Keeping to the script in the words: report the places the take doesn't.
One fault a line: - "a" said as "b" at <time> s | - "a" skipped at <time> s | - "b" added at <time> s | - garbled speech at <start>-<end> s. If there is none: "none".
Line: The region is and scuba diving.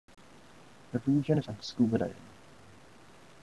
none